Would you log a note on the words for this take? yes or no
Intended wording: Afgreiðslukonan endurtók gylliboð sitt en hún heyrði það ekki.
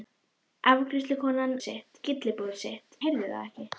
yes